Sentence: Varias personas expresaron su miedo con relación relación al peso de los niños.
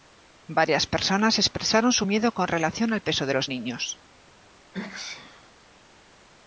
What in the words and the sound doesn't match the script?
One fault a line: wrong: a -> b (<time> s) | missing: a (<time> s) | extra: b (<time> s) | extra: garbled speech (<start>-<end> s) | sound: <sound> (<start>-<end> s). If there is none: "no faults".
missing: relación (2.9 s)
sound: sneeze (4.7-5.5 s)